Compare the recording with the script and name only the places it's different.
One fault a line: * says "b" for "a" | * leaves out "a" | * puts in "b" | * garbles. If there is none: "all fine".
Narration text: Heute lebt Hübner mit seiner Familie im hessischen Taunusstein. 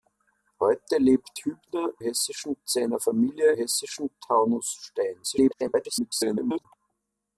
* says "hessischen" for "mit"
* leaves out "im"
* garbles